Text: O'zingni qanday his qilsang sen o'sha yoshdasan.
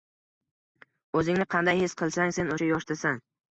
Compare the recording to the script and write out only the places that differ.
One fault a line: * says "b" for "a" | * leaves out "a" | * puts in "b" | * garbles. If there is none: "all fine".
all fine